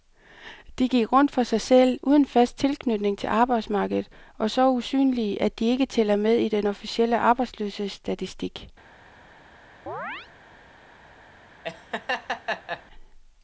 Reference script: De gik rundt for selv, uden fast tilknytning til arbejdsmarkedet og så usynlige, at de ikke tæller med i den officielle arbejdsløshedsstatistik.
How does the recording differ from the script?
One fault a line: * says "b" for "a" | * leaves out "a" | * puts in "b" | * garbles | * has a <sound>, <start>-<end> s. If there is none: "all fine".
* puts in "sig"
* has a chirp, 9.9-10.3 s
* has a laugh, 11.6-12.8 s